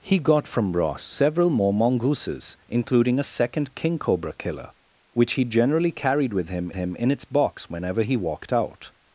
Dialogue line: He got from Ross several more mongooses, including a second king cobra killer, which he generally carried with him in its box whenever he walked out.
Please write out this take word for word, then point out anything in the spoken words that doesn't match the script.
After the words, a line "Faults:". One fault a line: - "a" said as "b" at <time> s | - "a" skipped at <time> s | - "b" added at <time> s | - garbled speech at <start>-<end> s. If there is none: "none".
He got from Ross several more mongooses, including a second king cobra killer, which he generally carried with him him in its box whenever he walked out.
Faults:
- "him" added at 6.7 s